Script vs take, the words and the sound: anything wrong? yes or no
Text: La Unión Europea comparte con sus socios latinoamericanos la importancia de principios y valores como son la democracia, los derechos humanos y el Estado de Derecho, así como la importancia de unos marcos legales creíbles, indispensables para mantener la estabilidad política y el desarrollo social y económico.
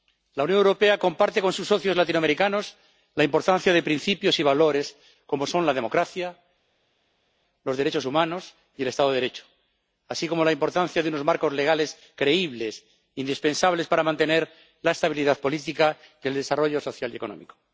no